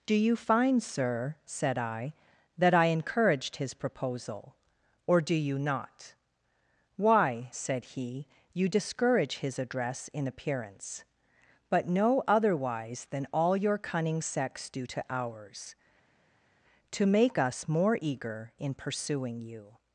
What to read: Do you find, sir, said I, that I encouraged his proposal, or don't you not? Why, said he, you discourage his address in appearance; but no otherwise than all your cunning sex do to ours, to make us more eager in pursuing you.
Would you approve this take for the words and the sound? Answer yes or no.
no